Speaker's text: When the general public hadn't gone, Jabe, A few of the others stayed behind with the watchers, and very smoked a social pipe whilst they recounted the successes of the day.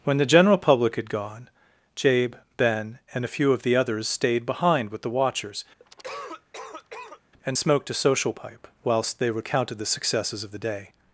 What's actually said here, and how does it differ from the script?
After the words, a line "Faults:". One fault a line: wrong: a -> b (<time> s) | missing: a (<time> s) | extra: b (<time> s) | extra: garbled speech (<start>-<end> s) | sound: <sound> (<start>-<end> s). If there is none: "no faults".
When the general public had gone, Jabe, Ben, and a few of the others stayed behind with the watchers, and smoked a social pipe whilst they recounted the successes of the day.
Faults:
wrong: hadn't -> had (0.9 s)
extra: Ben and (2.6 s)
sound: cough (5.8-7.2 s)
missing: very (7.6 s)